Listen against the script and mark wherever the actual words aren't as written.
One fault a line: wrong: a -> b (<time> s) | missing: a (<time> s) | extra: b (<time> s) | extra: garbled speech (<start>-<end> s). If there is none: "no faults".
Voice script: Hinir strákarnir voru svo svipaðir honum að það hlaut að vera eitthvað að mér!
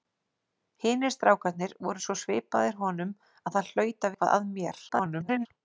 missing: vera (4.2 s)
extra: garbled speech (4.9-5.5 s)